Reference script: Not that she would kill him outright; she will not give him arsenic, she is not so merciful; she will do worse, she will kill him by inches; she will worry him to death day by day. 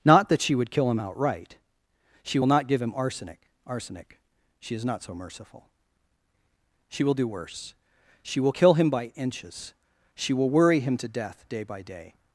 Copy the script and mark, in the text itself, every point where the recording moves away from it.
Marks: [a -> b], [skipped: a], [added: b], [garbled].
Not that she would kill him outright; she will not give him arsenic, [added: arsenic] she is not so merciful; she will do worse, she will kill him by inches; she will worry him to death day by day.